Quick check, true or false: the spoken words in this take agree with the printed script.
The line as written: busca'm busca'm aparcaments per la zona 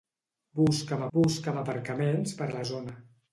true